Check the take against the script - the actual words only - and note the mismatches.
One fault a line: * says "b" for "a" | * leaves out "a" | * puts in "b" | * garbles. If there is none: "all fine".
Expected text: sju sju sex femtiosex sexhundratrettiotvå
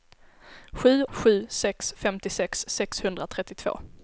all fine